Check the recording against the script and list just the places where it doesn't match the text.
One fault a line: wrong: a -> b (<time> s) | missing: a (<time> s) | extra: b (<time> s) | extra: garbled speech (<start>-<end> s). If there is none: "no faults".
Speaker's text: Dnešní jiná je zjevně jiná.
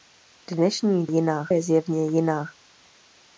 no faults